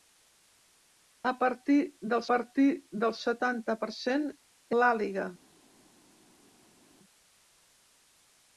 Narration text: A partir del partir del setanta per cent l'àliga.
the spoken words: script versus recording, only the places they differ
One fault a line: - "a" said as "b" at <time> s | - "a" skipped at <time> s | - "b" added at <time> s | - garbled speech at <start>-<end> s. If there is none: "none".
none